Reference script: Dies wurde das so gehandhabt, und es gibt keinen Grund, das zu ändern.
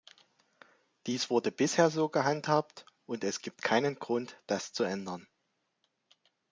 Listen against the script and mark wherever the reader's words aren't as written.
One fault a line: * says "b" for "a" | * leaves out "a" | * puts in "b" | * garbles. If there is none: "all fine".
* says "bisher" for "das"